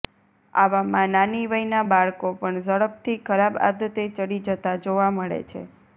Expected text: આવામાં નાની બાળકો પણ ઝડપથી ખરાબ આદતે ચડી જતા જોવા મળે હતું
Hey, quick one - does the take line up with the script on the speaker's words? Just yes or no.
no